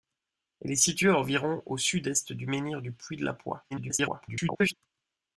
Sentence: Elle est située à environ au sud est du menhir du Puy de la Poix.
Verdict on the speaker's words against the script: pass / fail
fail